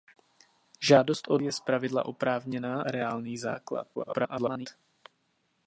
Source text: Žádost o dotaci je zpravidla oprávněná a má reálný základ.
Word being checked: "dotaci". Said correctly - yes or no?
no